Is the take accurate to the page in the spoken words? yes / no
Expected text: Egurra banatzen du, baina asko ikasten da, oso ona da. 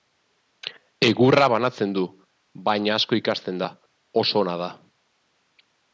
yes